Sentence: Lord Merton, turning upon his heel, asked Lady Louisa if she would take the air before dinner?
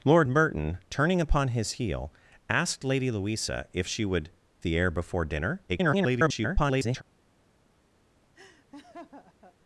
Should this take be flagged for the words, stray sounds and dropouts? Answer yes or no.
yes